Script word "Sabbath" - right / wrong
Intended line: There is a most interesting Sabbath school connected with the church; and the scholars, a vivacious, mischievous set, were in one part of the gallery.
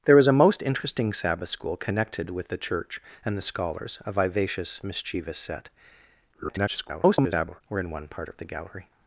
right